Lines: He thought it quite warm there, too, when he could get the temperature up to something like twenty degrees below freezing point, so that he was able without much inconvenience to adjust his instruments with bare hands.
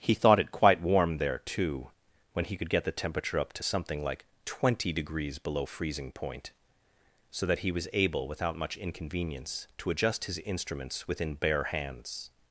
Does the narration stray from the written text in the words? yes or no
yes